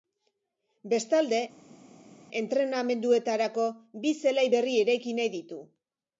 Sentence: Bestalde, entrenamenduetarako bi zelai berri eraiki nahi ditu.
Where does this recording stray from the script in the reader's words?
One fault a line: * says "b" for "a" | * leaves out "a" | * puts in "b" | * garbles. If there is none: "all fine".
all fine